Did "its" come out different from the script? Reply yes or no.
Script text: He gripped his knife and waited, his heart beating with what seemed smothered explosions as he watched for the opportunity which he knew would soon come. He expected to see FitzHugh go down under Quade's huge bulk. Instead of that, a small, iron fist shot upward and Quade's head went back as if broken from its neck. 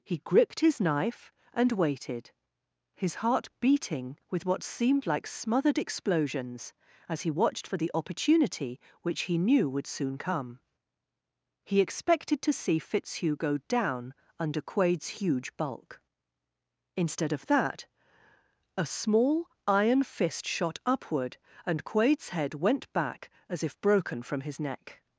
yes